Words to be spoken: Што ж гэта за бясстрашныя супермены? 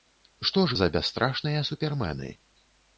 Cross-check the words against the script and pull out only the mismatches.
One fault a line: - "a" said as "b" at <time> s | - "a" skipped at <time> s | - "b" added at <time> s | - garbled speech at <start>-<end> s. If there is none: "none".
- "гэта" skipped at 0.8 s